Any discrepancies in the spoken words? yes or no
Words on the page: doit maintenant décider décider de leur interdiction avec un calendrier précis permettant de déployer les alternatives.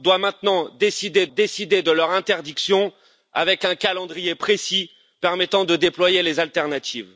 no